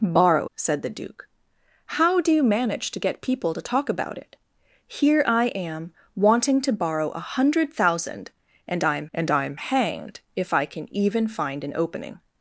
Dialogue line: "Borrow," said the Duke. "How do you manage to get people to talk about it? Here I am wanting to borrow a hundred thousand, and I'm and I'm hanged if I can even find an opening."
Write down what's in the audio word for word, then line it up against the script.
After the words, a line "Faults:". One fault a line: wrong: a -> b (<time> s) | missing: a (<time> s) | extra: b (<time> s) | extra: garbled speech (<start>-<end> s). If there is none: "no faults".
"Borrow," said the Duke. "How do you manage to get people to talk about it? Here I am wanting to borrow a hundred thousand, and I'm and I'm hanged if I can even find an opening."
Faults:
no faults